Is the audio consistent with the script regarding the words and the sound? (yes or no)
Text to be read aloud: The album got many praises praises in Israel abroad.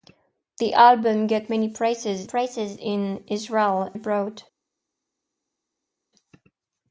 yes